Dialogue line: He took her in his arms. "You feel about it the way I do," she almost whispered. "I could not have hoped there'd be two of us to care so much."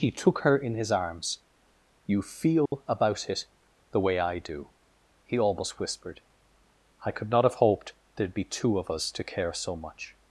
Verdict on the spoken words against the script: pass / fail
fail